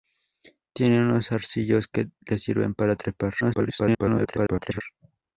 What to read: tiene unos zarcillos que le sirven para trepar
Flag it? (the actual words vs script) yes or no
yes